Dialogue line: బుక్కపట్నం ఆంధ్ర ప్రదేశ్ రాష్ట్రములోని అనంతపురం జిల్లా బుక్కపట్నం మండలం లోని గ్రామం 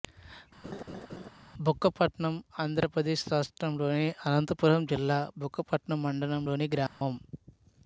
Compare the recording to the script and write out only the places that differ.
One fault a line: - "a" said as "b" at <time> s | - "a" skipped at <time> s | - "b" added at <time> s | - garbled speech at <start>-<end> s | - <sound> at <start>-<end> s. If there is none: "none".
- laugh at 0.6-1.3 s
- dropout at 6.9-7.0 s